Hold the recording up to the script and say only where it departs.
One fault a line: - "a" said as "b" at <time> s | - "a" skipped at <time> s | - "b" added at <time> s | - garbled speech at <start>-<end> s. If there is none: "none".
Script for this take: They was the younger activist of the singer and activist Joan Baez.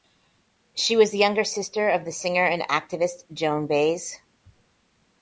- "They" said as "She" at 0.7 s
- "activist" said as "sister" at 1.4 s